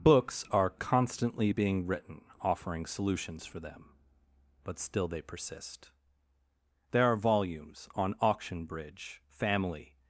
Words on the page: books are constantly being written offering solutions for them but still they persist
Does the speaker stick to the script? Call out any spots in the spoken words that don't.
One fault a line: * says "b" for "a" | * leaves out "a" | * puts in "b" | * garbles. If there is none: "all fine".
* puts in "there are volumes on auction bridge family"